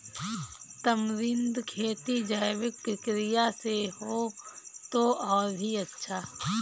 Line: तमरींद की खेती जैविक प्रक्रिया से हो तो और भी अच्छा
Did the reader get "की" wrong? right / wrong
wrong